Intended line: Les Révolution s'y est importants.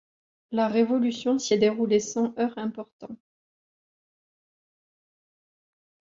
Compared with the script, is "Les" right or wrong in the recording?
wrong